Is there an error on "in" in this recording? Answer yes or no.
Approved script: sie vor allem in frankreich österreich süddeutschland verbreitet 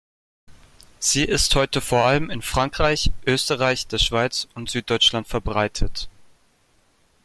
no